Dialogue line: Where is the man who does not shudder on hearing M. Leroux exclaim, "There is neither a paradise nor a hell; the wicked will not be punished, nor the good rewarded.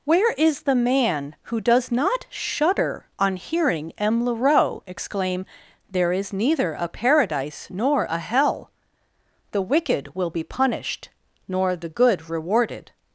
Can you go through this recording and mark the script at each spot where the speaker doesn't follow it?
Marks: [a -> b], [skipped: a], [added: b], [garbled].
Where is the man who does not shudder on hearing M. Leroux exclaim, "There is neither a paradise nor a hell; the wicked will [skipped: not] be punished, nor the good rewarded.